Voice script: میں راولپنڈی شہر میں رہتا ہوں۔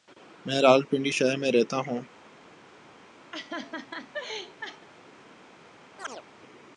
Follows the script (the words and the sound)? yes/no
no